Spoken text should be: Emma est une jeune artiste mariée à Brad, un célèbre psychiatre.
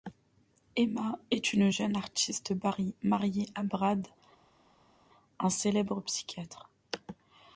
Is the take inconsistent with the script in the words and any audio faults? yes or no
no